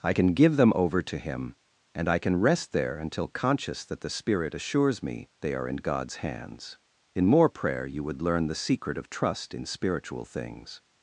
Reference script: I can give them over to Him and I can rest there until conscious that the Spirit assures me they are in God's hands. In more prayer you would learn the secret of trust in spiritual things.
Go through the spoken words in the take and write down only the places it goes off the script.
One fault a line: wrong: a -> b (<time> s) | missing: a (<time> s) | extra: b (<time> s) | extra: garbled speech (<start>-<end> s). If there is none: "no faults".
no faults